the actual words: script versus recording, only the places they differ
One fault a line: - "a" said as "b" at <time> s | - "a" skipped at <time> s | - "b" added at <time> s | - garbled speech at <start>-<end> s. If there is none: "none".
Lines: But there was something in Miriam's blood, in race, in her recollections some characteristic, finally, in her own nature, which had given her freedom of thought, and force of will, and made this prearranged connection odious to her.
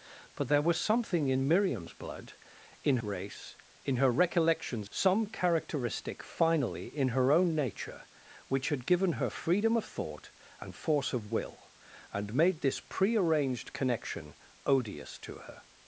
none